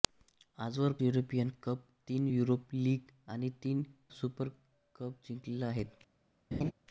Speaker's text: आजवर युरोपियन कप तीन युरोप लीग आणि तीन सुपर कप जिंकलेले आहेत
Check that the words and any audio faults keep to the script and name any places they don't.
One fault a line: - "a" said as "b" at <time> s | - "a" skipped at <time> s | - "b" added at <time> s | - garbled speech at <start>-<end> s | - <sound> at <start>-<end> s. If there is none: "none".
- laugh at 6.5-6.7 s